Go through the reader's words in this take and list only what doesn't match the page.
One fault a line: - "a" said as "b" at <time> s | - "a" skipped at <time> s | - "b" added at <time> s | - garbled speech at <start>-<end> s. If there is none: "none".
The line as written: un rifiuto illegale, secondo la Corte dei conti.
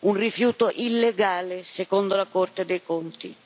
none